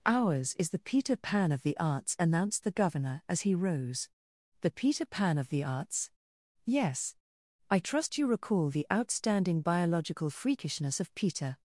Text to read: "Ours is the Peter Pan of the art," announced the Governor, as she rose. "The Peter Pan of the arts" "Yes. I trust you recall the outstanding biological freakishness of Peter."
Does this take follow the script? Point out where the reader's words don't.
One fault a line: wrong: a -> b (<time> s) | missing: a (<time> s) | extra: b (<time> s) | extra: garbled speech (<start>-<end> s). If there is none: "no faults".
wrong: art -> arts (1.8 s)
wrong: she -> he (3.4 s)